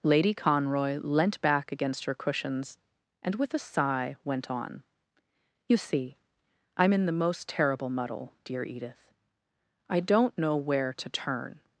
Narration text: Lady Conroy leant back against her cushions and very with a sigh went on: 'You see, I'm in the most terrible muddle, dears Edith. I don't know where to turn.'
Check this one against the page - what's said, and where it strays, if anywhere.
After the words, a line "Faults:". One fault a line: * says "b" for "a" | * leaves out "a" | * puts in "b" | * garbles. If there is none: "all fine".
Lady Conroy leant back against her cushions and with a sigh went on: 'You see, I'm in the most terrible muddle, dear Edith. I don't know where to turn.'
Faults:
* leaves out "very"
* says "dear" for "dears"